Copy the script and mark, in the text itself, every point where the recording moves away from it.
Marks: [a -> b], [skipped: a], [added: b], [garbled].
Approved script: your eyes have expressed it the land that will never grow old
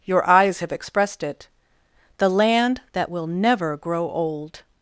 your eyes have expressed it the land that will never grow old